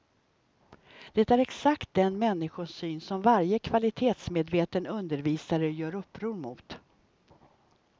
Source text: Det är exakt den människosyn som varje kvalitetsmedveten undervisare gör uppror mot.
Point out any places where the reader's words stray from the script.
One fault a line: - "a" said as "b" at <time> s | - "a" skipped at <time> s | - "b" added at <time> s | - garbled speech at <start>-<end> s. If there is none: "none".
none